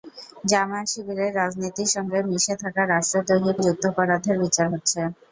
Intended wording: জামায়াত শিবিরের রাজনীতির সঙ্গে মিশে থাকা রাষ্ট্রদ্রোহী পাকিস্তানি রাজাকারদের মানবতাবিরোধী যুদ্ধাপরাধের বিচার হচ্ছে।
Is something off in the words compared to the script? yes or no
yes